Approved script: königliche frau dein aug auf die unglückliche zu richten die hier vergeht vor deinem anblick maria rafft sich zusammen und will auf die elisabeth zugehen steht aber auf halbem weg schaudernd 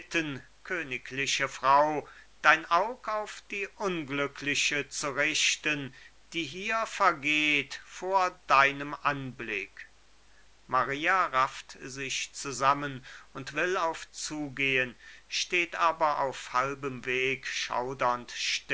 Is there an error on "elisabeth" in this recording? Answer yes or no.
yes